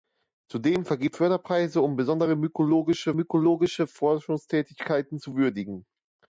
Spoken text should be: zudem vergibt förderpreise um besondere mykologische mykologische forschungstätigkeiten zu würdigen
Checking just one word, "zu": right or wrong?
right